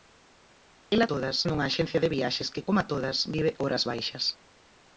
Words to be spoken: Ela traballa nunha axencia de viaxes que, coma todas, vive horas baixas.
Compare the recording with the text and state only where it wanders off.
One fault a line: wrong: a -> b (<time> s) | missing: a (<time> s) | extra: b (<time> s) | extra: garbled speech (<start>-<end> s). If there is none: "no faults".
wrong: traballa -> todas (1.1 s)